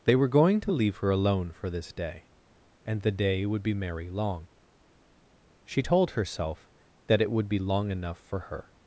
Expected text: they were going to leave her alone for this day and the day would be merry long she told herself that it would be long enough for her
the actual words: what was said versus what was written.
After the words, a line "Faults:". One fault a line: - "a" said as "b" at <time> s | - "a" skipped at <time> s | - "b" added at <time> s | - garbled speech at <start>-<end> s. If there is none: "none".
they were going to leave her alone for this day and the day would be merry long she told herself that it would be long enough for her
Faults:
none